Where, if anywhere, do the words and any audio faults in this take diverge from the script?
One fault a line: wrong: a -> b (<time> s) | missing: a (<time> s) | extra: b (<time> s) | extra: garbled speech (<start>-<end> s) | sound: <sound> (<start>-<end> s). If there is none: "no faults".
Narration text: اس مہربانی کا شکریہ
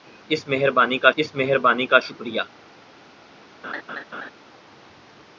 extra: اس مہربانی کا (1.2 s)
sound: laugh (3.6-4.3 s)